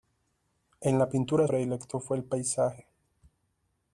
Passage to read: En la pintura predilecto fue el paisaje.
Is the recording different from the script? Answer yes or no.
no